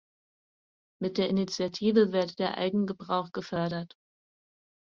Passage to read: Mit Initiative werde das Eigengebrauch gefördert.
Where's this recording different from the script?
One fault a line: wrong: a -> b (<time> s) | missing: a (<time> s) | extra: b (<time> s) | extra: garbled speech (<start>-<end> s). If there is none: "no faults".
extra: der (1.2 s)
wrong: das -> der (2.4 s)